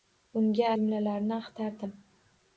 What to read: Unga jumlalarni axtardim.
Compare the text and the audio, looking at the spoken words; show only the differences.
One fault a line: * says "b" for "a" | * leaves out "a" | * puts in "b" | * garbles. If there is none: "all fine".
all fine